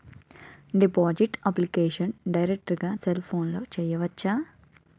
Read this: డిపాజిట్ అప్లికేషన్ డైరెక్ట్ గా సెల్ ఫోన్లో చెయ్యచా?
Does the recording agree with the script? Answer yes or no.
yes